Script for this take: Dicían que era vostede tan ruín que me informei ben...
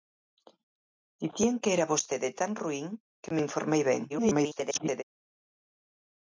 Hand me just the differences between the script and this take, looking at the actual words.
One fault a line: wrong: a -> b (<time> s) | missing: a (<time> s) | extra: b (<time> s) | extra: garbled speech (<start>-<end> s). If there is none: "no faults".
extra: garbled speech (4.1-5.0 s)